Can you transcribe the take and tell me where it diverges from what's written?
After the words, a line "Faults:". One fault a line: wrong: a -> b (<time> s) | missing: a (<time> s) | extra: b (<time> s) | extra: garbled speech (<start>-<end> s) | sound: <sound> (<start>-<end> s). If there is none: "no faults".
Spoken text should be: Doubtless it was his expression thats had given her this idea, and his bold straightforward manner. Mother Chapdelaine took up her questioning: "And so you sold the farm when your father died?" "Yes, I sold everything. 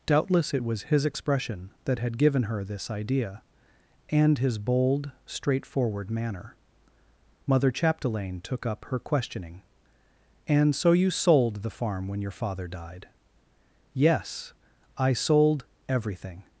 Doubtless it was his expression that had given her this idea, and his bold straightforward manner. Mother Chapdelaine took up her questioning: "And so you sold the farm when your father died?" "Yes, I sold everything.
Faults:
wrong: thats -> that (1.9 s)